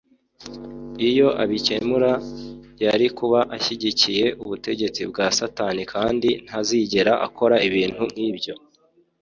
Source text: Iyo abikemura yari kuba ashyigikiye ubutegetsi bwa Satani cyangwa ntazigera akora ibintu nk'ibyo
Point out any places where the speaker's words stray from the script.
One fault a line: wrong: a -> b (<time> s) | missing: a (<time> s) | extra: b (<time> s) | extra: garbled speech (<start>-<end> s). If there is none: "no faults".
wrong: cyangwa -> kandi (5.9 s)